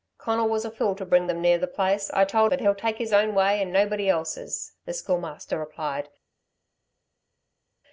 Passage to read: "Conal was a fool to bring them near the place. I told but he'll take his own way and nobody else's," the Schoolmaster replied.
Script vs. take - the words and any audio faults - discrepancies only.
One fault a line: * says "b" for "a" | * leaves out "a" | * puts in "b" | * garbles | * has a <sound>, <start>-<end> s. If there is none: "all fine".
all fine